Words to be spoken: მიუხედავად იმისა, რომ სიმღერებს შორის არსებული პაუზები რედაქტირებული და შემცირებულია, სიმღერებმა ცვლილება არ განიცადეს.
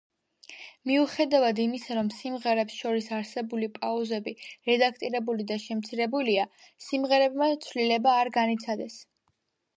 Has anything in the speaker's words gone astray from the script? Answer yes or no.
no